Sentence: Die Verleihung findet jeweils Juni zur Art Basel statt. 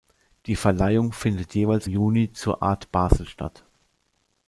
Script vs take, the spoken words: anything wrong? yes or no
no